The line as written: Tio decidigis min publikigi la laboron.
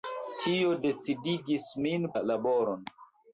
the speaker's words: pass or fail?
fail